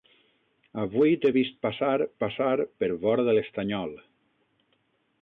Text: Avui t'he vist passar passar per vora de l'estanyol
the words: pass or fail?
pass